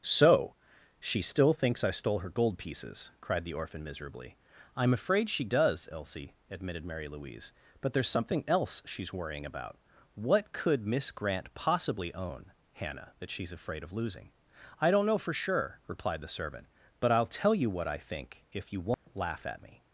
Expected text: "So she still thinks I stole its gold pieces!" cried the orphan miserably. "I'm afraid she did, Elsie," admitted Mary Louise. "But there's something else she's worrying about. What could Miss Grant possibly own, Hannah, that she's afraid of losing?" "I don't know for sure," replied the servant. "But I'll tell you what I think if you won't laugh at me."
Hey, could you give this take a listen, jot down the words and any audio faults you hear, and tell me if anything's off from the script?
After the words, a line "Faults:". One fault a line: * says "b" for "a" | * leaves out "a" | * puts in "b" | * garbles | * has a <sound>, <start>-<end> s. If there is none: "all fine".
"So she still thinks I stole her gold pieces!" cried the orphan miserably. "I'm afraid she does, Elsie," admitted Mary Louise. "But there's something else she's worrying about. What could Miss Grant possibly own, Hannah, that she's afraid of losing?" "I don't know for sure," replied the servant. "But I'll tell you what I think if you won't laugh at me."
Faults:
* says "her" for "its"
* says "does" for "did"
* has a dropout, 18.9-19.1 s